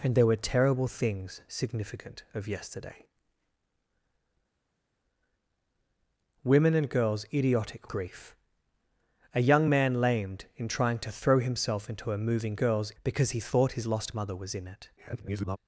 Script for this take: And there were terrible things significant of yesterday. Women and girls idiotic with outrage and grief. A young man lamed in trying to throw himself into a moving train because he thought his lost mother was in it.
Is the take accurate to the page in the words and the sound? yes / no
no